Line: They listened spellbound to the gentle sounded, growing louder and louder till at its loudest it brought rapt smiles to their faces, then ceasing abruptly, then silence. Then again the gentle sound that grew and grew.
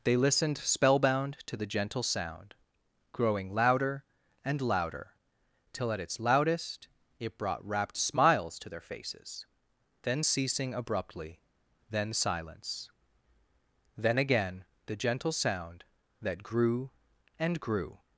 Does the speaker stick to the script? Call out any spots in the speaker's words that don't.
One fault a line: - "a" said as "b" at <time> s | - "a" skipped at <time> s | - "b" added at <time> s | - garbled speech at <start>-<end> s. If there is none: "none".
- "sounded" said as "sound" at 2.0 s